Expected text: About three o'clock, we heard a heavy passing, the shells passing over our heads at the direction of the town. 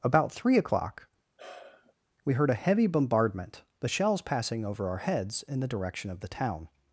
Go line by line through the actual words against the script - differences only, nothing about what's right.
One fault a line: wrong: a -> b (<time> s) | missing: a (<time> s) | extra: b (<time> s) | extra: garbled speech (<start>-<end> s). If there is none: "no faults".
wrong: passing -> bombardment (2.9 s)
wrong: at -> in (5.4 s)